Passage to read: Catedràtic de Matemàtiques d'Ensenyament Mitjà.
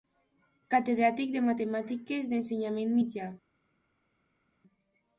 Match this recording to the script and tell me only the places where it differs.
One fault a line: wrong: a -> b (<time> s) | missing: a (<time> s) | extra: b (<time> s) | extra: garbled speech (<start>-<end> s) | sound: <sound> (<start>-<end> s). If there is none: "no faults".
no faults